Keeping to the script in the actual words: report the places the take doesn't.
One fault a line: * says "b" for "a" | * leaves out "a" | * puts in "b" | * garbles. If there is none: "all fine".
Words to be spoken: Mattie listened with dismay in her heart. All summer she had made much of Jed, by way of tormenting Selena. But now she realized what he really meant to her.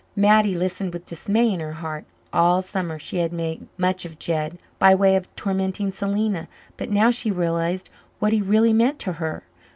all fine